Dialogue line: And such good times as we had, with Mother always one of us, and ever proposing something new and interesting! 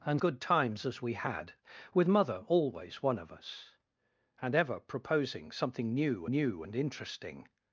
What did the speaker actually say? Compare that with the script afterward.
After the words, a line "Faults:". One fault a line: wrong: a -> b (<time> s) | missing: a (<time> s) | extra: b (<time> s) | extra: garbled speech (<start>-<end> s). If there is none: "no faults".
And good times as we had, with Mother always one of us, and ever proposing something new new and interesting!
Faults:
missing: such (0.2 s)
extra: new (6.3 s)